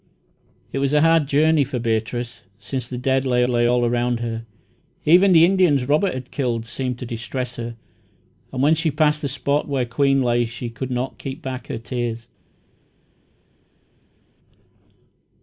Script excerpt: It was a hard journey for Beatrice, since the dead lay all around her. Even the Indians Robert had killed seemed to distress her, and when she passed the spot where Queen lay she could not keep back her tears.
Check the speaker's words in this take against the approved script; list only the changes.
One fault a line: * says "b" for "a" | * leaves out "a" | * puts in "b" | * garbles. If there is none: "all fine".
* puts in "lay"